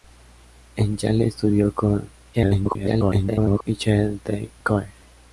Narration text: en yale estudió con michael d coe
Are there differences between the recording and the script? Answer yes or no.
yes